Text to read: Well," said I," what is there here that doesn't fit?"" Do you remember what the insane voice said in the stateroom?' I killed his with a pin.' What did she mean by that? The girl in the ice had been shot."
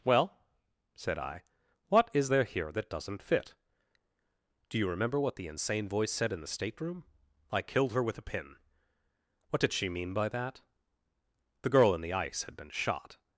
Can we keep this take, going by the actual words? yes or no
no